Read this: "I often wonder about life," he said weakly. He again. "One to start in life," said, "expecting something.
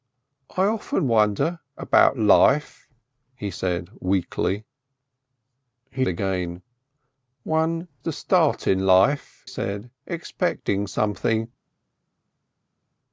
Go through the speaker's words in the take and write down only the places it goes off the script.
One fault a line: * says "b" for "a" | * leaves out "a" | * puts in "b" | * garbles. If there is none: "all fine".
all fine